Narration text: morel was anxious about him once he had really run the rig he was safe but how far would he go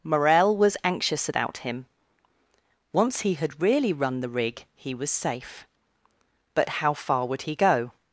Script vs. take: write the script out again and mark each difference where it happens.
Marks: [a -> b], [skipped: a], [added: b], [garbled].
morel was anxious about him once he had really run the rig he was safe but how far would he go